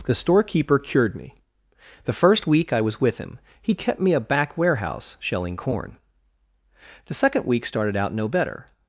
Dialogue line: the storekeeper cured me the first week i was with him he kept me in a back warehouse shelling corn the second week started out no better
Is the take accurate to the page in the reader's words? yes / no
no